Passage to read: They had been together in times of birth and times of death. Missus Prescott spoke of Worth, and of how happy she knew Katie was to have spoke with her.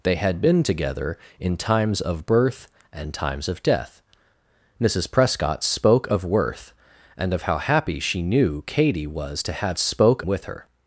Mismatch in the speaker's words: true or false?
false